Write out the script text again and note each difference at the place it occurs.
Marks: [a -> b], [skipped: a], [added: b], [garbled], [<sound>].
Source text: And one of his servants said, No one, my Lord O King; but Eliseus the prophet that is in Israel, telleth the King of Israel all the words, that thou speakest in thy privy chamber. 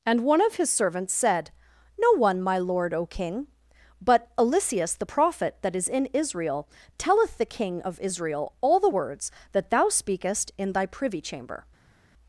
And one of his servants said, No one, my Lord O King; but Eliseus the prophet that is in Israel, telleth the King of Israel all the words, that thou speakest in thy privy chamber.